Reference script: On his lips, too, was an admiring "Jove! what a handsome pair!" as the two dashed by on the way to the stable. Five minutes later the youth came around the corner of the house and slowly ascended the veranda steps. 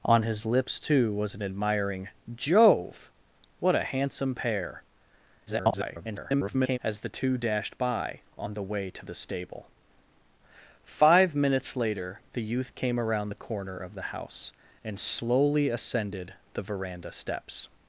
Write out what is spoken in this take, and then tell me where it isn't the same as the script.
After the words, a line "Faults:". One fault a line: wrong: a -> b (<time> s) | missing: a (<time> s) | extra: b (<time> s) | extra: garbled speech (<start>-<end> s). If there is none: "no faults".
On his lips, too, was an admiring "Jove! what a handsome pair!" [garbled] as the two dashed by on the way to the stable. Five minutes later the youth came around the corner of the house and slowly ascended the veranda steps.
Faults:
extra: garbled speech (5.5-6.8 s)